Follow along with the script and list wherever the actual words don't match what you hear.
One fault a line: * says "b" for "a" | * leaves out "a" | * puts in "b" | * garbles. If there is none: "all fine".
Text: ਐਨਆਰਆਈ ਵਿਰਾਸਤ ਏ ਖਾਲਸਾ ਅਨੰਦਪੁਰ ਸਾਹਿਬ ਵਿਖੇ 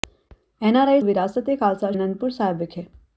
all fine